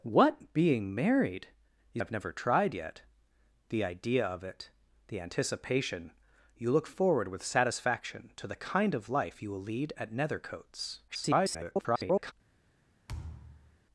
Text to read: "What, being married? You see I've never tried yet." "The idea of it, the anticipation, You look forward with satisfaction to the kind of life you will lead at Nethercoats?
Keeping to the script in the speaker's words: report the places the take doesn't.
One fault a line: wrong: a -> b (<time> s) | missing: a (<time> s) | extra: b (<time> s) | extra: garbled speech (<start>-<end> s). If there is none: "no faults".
missing: see (2.0 s)
extra: garbled speech (11.1-12.3 s)